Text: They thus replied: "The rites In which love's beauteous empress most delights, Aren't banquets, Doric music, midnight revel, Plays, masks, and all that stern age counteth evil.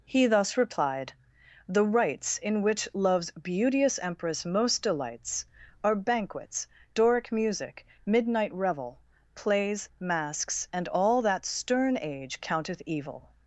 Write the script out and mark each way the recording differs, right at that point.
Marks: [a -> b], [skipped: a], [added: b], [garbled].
[They -> He] thus replied: "The rites In which love's beauteous empress most delights, [Aren't -> Are] banquets, Doric music, midnight revel, Plays, masks, and all that stern age counteth evil.